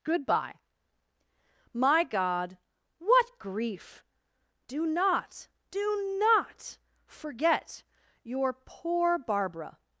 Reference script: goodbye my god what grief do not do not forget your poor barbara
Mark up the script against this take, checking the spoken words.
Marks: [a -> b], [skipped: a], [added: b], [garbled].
goodbye my god what grief do not do not forget your poor barbara